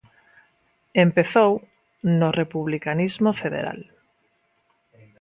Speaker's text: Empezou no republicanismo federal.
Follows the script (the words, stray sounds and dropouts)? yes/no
yes